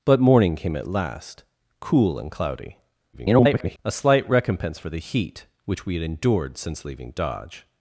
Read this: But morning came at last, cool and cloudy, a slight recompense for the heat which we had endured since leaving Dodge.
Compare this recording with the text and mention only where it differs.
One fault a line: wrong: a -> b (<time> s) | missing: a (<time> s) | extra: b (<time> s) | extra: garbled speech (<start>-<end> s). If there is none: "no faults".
extra: garbled speech (3.1-3.8 s)